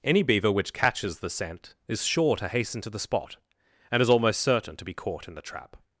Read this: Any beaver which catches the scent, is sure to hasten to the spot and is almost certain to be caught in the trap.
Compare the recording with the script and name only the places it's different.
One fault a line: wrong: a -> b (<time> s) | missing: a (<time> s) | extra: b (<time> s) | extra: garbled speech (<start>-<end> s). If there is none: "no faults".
no faults